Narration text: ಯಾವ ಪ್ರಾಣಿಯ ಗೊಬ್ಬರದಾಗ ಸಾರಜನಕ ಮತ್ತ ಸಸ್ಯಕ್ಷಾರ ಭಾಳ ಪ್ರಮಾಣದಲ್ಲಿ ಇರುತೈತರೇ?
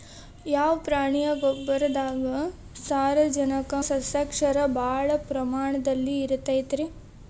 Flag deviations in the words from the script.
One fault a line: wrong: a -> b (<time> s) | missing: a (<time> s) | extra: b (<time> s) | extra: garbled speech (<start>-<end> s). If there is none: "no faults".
missing: ಮತ್ತ (3.7 s)